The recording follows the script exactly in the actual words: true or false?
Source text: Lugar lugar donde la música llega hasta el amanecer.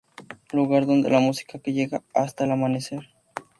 false